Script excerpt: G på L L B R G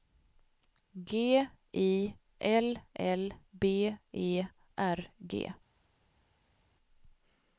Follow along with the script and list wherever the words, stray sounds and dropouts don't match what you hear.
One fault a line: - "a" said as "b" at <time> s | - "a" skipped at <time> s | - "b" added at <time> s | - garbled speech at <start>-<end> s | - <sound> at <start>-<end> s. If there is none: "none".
- "på" said as "I" at 1.7 s
- "E" added at 4.1 s